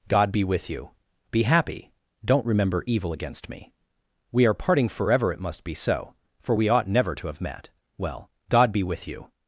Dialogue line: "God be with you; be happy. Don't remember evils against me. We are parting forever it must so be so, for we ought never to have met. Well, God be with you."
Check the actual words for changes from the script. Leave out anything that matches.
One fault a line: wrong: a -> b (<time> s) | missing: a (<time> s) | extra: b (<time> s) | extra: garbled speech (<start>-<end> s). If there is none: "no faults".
wrong: evils -> evil (2.9 s)
missing: so (5.6 s)